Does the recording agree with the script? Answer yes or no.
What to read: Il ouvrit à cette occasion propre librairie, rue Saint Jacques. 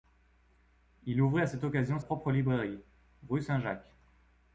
yes